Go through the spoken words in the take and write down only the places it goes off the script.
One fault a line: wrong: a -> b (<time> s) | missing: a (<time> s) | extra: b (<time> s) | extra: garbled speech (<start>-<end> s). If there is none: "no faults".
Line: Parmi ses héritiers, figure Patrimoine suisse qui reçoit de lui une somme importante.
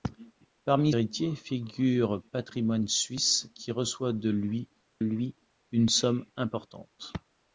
missing: ses (0.9 s)
extra: lui (5.0 s)